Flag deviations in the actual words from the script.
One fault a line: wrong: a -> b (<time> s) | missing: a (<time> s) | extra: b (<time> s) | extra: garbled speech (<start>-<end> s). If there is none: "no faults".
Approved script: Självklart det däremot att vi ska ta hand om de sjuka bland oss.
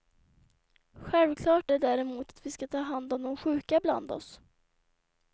no faults